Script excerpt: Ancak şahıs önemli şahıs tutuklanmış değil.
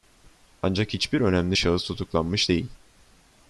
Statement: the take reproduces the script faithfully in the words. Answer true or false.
false